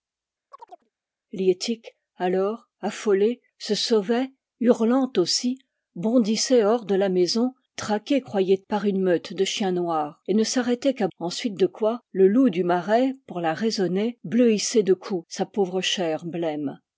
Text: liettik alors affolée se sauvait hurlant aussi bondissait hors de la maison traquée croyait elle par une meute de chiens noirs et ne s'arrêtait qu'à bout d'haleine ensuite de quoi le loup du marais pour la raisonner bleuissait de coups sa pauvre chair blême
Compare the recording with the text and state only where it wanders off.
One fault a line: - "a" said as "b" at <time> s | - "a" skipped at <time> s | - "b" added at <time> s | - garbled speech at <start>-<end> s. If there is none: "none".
- "elle" skipped at 8.6 s
- "bout d'haleine" skipped at 11.1 s